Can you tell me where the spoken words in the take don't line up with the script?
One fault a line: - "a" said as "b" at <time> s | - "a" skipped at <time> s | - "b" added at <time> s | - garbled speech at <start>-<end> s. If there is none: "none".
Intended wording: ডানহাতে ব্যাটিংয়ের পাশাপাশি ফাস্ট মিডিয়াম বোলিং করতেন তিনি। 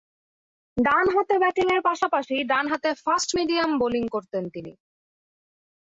- "ডানহাতে" added at 2.4 s